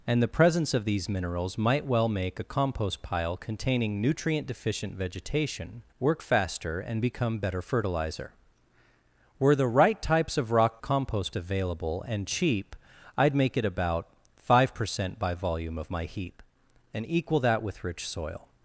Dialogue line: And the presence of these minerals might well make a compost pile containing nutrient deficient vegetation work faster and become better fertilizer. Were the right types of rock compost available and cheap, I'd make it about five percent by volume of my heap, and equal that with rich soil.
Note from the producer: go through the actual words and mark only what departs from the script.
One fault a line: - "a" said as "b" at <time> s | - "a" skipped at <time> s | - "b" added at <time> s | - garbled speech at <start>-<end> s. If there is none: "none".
none